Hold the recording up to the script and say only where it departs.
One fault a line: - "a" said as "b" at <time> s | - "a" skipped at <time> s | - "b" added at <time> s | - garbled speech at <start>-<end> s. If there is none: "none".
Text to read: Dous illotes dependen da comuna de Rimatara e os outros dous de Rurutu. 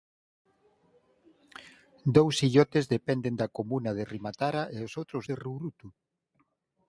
- "dous" skipped at 5.2 s